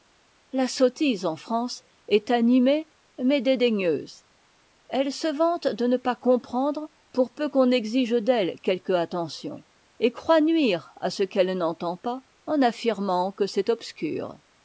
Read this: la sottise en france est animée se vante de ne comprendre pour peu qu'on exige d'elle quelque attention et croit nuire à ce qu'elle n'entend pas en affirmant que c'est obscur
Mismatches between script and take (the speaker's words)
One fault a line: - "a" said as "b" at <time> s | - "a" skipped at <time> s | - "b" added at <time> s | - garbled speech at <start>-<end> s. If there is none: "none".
- "mais dédaigneuse elle" added at 3.2 s
- "pas" added at 6.0 s